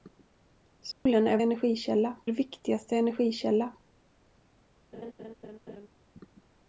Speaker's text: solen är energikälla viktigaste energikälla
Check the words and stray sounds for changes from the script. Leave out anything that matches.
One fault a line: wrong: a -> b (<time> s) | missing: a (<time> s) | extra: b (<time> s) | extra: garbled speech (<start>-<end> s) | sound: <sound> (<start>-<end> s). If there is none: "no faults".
sound: dropout (0.9-1.1 s)
sound: laugh (4.9-5.9 s)